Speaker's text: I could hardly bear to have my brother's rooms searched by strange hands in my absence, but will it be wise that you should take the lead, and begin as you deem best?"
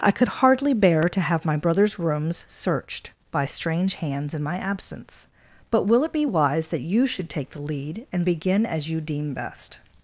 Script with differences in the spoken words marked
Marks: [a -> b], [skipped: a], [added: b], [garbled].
I could hardly bear to have my brother's rooms searched by strange hands in my absence, but will it be wise that you should take the lead, and begin as you deem best?"